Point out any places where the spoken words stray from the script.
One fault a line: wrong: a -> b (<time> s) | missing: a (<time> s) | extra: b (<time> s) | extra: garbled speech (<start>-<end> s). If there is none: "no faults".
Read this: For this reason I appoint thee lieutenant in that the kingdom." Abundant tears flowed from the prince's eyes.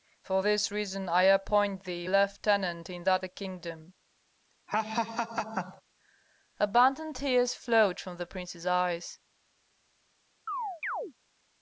no faults